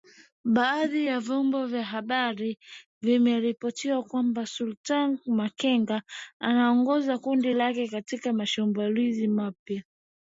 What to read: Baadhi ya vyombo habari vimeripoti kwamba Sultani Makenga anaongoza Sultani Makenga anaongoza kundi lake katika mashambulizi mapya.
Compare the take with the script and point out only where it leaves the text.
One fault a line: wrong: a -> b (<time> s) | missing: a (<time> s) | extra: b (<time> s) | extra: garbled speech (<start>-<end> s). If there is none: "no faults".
extra: vya (1.7 s)
missing: Sultani Makenga anaongoza (7.2 s)